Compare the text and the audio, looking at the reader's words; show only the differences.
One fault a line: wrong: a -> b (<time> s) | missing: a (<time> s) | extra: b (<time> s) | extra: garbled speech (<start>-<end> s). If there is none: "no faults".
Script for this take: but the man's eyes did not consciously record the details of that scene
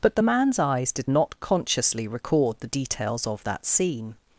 no faults